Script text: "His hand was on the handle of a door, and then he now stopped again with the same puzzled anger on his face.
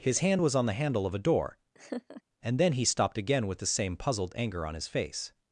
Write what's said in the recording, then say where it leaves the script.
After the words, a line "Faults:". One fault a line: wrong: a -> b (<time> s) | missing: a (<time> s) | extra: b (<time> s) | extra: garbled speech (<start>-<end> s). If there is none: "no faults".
"His hand was on the handle of a door, and then he stopped again with the same puzzled anger on his face.
Faults:
missing: now (2.8 s)